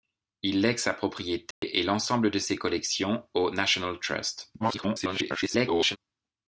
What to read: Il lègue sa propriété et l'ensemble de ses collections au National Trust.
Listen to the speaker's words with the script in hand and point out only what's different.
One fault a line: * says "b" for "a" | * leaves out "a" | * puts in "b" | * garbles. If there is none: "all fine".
* garbles